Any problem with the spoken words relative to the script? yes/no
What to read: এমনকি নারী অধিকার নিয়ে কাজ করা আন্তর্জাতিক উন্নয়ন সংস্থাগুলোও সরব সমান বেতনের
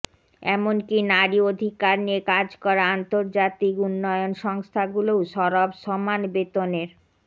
no